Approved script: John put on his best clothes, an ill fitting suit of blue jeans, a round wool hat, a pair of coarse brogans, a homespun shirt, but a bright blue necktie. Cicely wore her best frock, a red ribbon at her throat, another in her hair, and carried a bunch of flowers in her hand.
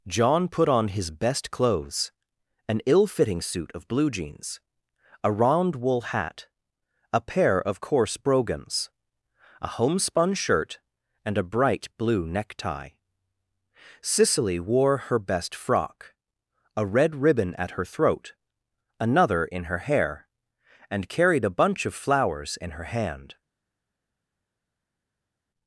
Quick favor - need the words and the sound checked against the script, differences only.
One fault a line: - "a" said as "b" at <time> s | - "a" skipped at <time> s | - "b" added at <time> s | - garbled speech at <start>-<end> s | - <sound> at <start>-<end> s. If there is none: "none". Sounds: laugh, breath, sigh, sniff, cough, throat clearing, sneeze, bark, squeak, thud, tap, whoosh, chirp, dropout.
- "but" said as "and" at 11.2 s